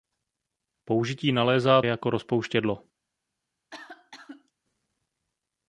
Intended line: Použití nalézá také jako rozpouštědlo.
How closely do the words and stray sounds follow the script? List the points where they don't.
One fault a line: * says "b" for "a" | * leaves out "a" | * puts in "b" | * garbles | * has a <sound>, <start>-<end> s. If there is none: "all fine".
* leaves out "také"
* has a cough, 3.7-4.5 s